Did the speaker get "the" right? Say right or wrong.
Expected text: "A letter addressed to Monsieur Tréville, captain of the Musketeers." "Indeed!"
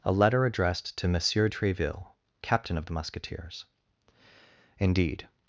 right